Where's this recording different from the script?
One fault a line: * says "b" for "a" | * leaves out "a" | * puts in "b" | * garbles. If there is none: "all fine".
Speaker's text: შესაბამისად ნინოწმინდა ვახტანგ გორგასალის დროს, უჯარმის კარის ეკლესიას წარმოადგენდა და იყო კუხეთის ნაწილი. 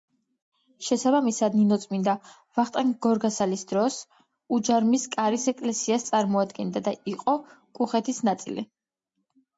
all fine